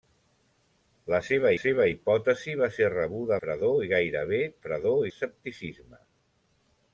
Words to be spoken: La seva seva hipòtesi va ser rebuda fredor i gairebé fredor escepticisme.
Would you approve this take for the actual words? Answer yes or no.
yes